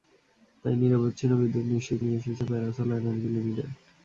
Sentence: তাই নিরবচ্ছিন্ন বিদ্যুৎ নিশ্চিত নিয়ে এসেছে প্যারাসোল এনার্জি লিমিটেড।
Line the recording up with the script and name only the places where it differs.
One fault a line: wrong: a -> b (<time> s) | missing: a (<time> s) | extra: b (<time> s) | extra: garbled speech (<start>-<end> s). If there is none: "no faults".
no faults